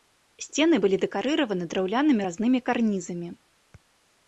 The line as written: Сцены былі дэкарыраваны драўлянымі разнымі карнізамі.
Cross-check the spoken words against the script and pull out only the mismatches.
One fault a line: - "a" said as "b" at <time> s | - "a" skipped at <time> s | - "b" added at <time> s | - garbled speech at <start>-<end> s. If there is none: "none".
none